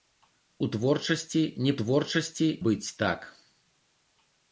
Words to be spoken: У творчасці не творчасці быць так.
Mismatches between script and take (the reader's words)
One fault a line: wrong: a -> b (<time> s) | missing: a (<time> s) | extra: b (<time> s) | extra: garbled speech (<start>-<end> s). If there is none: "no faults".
no faults